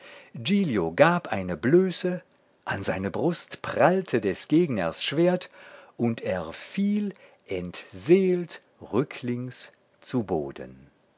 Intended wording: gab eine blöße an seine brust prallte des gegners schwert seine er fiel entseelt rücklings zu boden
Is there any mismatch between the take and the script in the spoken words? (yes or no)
yes